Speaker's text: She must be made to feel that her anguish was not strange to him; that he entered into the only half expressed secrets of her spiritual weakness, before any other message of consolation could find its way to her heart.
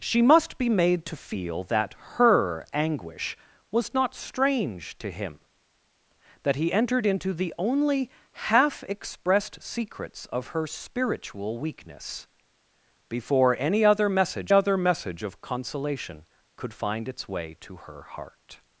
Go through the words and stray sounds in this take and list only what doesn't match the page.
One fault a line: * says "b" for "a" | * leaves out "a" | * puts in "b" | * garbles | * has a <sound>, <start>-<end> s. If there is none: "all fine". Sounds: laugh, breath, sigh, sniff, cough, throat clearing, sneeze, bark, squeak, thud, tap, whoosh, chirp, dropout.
* puts in "other message"